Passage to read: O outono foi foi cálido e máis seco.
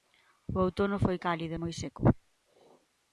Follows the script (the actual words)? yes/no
no